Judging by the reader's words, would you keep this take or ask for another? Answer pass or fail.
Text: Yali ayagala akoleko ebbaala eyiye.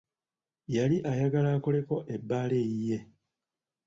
pass